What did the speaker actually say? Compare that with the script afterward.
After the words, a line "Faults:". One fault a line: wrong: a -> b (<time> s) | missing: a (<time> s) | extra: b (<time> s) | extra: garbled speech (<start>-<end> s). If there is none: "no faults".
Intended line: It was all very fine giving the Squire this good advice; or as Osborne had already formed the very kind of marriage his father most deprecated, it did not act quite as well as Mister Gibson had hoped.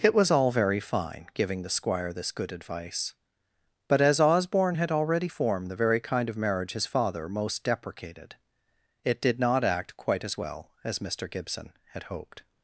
It was all very fine giving the Squire this good advice; but as Osborne had already formed the very kind of marriage his father most deprecated, it did not act quite as well as Mister Gibson had hoped.
Faults:
wrong: or -> but (3.9 s)